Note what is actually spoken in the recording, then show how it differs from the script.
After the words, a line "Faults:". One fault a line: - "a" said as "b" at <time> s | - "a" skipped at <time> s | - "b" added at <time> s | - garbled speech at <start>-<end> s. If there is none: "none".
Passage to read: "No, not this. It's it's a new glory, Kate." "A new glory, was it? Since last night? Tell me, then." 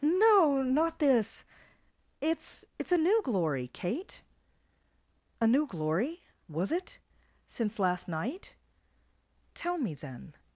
"No, not this. It's it's a new glory, Kate." "A new glory, was it? Since last night? Tell me, then."
Faults:
none